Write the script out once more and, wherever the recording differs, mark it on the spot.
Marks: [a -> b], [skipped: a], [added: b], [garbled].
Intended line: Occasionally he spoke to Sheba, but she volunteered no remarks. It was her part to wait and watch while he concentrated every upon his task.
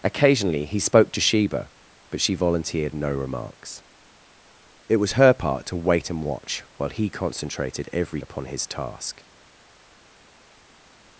Occasionally he spoke to Sheba, but she volunteered no remarks. It was her part to wait and watch while he concentrated every upon his task.